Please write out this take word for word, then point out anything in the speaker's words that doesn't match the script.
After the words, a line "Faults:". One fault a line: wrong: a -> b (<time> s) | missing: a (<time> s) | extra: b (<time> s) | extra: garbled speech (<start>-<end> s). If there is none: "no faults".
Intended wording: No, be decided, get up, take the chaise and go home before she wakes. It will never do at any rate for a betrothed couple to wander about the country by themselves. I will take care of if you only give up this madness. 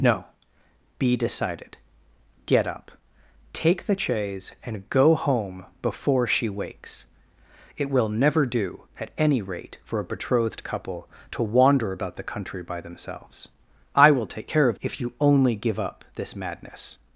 No, be decided, get up, take the chaise and go home before she wakes. It will never do at any rate for a betrothed couple to wander about the country by themselves. I will take care of if you only give up this madness.
Faults:
no faults